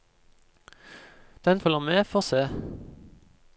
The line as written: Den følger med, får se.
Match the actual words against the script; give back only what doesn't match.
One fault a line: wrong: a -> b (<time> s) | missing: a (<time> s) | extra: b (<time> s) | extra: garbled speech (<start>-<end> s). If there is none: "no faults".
no faults